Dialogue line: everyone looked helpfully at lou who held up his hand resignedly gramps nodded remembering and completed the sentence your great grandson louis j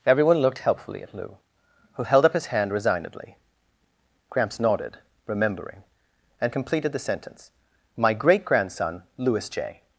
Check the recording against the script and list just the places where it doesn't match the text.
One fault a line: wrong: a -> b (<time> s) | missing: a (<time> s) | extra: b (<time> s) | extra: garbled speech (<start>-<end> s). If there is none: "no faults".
wrong: your -> my (8.0 s)